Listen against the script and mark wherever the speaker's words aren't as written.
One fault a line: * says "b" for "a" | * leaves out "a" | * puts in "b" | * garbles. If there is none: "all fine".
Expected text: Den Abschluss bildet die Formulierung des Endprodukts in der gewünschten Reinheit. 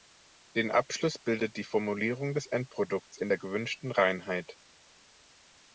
all fine